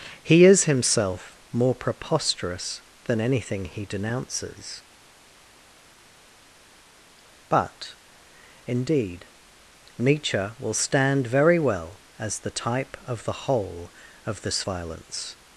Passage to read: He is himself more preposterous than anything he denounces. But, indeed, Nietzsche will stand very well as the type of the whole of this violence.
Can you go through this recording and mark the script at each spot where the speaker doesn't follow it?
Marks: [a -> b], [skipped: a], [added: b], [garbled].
He is himself more preposterous than anything he denounces. But, indeed, Nietzsche will stand very well as the type of the whole of this violence.